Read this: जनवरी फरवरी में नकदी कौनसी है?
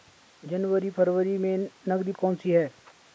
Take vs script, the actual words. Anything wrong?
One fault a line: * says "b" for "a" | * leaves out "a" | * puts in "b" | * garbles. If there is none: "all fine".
all fine